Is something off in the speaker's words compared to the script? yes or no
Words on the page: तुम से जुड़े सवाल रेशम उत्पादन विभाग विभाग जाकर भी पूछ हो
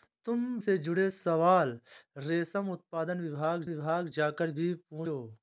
no